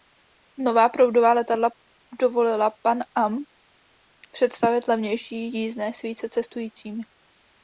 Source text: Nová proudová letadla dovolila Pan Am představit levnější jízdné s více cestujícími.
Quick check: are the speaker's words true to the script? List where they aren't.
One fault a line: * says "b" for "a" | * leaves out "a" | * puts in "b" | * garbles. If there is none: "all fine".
all fine